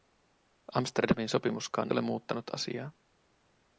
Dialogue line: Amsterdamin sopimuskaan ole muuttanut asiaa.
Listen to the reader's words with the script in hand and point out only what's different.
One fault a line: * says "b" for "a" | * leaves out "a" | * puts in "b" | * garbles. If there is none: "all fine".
all fine